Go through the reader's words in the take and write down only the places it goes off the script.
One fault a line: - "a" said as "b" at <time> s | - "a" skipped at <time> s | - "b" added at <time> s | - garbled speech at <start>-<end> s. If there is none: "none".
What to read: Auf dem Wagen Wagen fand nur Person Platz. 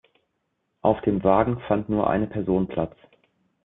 - "Wagen" skipped at 1.6 s
- "eine" added at 2.1 s